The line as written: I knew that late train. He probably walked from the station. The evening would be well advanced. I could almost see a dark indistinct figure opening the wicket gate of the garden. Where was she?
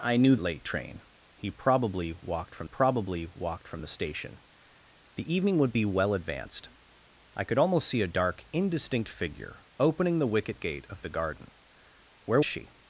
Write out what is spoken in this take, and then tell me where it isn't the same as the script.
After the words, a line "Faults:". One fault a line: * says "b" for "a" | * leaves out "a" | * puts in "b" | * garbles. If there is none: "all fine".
I knew late train. He probably walked from probably walked from the station. The evening would be well advanced. I could almost see a dark indistinct figure opening the wicket gate of the garden. Where she?
Faults:
* leaves out "that"
* puts in "probably walked from"
* leaves out "was"